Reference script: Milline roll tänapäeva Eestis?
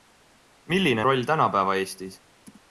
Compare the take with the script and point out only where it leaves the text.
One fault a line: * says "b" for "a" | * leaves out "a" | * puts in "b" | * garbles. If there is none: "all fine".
all fine